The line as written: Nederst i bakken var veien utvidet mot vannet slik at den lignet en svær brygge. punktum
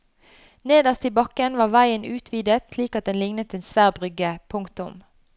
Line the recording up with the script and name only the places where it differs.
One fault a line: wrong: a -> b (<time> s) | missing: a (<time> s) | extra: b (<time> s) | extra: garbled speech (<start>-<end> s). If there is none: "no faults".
missing: mot vannet (2.7 s)